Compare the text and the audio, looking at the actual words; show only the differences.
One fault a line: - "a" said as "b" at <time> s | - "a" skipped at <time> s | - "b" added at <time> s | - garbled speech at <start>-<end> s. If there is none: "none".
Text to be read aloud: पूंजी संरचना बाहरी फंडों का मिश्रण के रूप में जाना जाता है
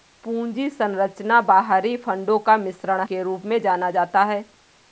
none